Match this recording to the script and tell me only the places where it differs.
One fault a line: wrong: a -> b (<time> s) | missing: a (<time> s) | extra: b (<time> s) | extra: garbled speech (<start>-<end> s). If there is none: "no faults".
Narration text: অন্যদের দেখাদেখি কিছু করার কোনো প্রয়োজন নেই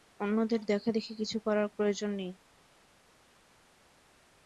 missing: কোনো (1.7 s)